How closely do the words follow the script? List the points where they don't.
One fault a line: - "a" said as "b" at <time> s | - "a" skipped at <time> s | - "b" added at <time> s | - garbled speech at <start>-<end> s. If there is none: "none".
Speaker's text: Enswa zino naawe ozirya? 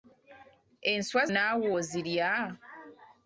- "zino" skipped at 1.2 s